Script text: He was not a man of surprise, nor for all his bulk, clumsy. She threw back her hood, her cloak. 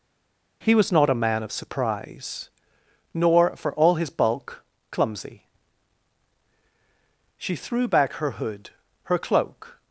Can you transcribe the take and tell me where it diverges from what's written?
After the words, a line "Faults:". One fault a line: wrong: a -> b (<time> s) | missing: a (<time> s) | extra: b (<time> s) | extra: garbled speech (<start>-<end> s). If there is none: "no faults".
He was not a man of surprise, nor for all his bulk, clumsy. She threw back her hood, her cloak.
Faults:
no faults